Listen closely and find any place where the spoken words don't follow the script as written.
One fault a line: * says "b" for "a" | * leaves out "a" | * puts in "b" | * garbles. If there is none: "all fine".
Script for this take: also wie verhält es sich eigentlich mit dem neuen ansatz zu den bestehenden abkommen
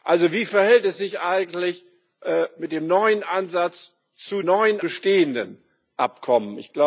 * says "neuen" for "den"